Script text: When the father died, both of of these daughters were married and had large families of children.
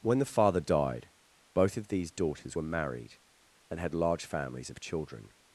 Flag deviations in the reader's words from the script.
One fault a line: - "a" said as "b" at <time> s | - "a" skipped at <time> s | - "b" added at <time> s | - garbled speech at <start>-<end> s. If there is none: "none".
- "of" skipped at 1.9 s